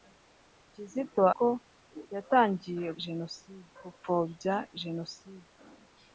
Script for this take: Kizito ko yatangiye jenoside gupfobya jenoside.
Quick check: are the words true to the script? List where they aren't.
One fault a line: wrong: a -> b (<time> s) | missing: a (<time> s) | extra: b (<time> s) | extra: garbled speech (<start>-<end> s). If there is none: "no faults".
no faults